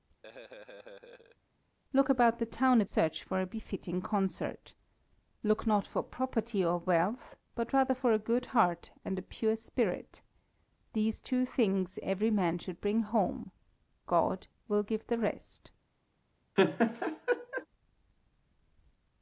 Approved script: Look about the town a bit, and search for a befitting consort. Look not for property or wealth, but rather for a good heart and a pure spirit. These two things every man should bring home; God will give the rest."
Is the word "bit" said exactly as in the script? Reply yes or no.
no